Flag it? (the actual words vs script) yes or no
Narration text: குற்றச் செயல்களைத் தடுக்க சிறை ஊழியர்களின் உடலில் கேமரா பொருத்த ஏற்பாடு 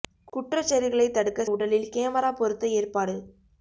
yes